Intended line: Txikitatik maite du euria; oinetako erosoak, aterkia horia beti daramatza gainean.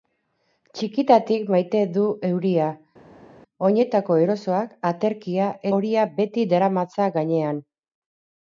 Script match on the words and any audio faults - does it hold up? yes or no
yes